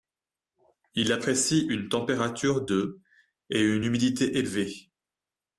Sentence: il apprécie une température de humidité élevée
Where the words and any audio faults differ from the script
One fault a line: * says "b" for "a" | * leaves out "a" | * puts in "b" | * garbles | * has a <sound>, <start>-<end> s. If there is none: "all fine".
* puts in "et une"